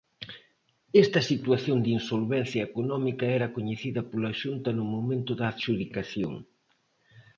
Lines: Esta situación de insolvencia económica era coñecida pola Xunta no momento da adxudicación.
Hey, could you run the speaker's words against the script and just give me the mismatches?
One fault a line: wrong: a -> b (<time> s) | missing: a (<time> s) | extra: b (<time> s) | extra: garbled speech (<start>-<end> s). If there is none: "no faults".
no faults